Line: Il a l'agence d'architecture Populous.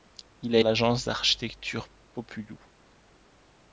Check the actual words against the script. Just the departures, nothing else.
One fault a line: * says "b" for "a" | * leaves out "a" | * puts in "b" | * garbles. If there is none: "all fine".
all fine